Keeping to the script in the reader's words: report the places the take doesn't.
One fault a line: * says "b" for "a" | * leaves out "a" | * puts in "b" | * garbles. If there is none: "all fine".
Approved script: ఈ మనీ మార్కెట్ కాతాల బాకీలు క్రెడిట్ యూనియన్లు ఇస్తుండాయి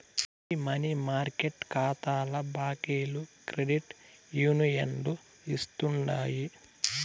all fine